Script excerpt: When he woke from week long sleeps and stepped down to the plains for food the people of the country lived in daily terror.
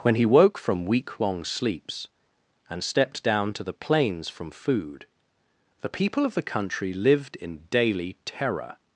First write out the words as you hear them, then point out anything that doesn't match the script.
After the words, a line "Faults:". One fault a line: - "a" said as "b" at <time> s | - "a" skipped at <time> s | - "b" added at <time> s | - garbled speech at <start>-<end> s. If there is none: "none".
When he woke from week long sleeps and stepped down to the plains from food the people of the country lived in daily terror.
Faults:
- "for" said as "from" at 4.3 s